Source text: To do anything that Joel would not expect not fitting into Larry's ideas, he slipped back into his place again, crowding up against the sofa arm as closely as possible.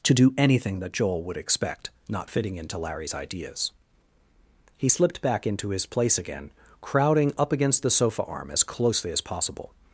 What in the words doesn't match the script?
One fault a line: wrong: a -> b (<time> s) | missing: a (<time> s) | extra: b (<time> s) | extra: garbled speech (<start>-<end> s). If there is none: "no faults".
missing: not (1.4 s)